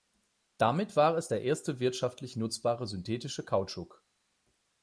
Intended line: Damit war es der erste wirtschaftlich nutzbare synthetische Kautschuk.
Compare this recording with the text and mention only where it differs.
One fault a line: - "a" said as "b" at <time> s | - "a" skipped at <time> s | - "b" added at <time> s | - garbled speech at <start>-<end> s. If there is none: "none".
none